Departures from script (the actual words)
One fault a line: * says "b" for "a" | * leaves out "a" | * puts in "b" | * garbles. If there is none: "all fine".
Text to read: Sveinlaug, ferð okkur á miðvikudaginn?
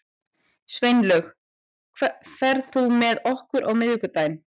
* puts in "þú með"